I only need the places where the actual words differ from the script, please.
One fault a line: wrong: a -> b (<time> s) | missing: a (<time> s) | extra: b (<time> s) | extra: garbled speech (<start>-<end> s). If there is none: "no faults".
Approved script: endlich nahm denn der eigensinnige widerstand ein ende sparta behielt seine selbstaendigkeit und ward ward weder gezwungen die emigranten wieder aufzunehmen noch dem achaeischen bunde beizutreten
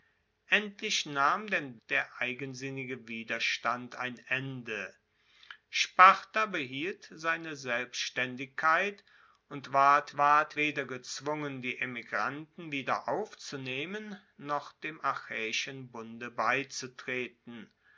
no faults